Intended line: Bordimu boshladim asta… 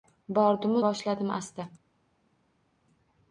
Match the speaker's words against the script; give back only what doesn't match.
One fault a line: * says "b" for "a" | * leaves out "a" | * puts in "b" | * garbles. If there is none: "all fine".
all fine